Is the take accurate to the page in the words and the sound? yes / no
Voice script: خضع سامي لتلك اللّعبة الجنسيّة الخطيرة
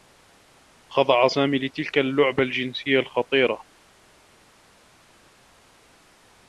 yes